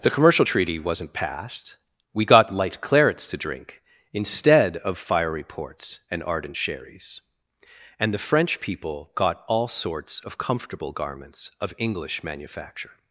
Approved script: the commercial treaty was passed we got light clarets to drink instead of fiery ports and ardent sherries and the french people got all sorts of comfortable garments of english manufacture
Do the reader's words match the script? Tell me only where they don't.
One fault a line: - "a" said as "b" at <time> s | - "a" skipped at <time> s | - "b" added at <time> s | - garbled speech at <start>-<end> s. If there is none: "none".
- "was" said as "wasn't" at 0.8 s